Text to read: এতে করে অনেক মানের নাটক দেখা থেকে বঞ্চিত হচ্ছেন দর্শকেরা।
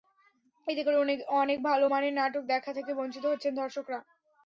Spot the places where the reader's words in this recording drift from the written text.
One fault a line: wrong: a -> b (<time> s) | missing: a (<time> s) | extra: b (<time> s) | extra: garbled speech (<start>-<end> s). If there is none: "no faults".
extra: ভালো (1.7 s)